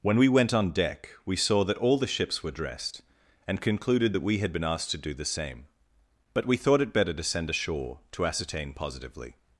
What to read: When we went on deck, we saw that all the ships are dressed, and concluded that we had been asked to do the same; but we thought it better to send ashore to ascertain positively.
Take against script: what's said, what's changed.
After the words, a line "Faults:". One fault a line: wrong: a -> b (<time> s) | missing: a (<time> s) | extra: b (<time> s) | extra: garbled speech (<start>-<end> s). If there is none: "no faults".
When we went on deck, we saw that all the ships were dressed, and concluded that we had been asked to do the same; but we thought it better to send ashore to ascertain positively.
Faults:
wrong: are -> were (2.4 s)